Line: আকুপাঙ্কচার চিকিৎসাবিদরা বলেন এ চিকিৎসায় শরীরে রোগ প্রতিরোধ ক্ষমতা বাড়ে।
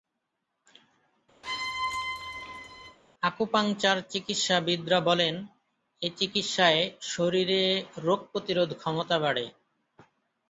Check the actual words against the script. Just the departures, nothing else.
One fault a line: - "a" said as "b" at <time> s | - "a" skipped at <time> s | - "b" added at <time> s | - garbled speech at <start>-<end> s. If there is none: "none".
none